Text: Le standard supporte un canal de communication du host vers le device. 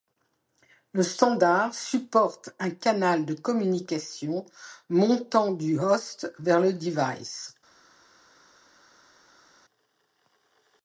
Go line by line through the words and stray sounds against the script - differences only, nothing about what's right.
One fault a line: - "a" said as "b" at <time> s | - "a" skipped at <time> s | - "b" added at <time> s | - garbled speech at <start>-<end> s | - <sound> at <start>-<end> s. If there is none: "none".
- "montant" added at 4.9 s